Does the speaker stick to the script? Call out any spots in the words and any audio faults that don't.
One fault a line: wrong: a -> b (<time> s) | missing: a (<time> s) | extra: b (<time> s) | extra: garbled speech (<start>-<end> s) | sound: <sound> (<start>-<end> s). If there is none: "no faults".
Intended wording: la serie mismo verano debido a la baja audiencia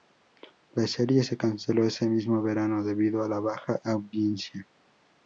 extra: se canceló ese (1.2 s)